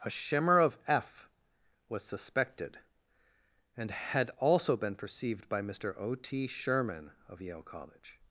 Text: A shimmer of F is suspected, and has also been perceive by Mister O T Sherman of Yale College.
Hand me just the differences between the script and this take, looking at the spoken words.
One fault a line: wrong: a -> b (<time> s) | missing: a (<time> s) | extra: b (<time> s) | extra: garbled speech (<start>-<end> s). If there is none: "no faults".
wrong: is -> was (1.9 s)
wrong: has -> had (3.9 s)
wrong: perceive -> perceived (5.0 s)